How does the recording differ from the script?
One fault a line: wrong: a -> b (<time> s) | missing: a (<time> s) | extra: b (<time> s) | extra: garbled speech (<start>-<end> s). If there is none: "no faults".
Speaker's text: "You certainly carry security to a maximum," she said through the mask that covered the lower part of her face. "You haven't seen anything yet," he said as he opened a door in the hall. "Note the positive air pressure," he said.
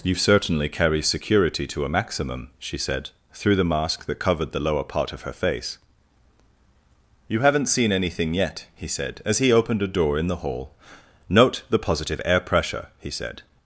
no faults